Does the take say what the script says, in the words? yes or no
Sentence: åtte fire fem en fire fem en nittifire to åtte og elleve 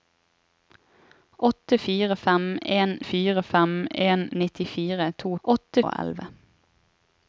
yes